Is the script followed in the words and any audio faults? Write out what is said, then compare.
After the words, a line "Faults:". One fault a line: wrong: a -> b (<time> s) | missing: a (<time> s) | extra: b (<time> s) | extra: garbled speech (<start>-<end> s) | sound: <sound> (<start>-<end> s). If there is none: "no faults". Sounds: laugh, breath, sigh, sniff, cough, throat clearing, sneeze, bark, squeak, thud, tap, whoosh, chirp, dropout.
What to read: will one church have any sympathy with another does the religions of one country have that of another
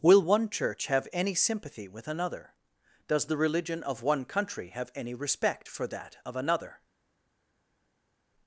will one church have any sympathy with another does the religion of one country have any respect for that of another
Faults:
wrong: religions -> religion (3.4 s)
extra: any respect for (4.9 s)